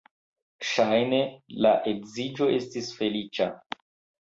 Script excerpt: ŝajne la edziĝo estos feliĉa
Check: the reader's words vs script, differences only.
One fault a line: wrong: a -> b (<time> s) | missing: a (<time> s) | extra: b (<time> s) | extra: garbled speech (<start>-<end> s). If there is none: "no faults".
wrong: estos -> estis (2.6 s)